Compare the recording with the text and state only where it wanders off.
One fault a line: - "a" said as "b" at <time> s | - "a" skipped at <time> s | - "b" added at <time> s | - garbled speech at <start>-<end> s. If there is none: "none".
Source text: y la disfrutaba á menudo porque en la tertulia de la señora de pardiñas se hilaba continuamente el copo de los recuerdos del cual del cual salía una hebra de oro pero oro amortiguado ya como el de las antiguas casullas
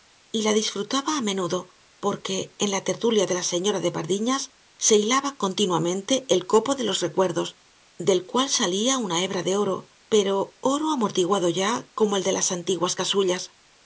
- "del cual" skipped at 8.5 s